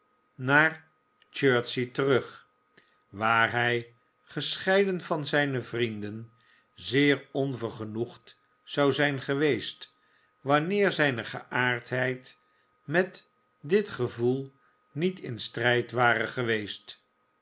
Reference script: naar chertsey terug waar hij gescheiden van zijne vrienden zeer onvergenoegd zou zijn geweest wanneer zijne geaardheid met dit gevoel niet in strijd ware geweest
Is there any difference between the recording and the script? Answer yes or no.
no